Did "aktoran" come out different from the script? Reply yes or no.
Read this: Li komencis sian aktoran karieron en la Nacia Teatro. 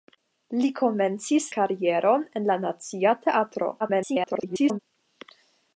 yes